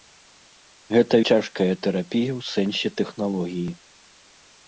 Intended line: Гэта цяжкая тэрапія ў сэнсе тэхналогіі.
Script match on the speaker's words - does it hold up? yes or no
yes